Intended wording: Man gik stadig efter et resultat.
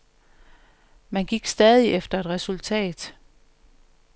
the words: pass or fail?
pass